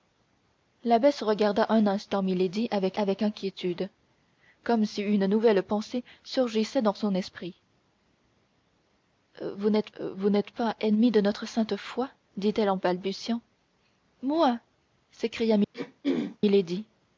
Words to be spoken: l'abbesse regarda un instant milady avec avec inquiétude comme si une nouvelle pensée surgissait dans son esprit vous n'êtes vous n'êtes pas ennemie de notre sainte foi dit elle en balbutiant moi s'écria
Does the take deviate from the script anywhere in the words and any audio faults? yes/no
yes